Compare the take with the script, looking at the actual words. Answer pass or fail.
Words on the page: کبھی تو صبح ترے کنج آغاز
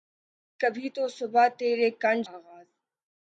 pass